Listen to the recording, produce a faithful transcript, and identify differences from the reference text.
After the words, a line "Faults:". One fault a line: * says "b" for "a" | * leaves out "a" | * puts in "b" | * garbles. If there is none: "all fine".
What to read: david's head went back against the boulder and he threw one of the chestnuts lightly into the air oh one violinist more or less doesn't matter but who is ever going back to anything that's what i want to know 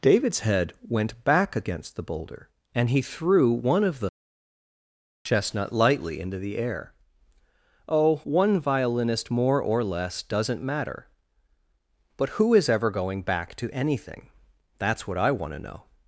david's head went back against the boulder and he threw one of the chestnut lightly into the air oh one violinist more or less doesn't matter but who is ever going back to anything that's what i want to know
Faults:
* says "chestnut" for "chestnuts"